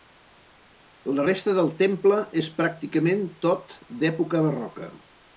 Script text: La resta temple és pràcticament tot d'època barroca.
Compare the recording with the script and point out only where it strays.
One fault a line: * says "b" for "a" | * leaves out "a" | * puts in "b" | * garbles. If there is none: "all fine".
* puts in "del"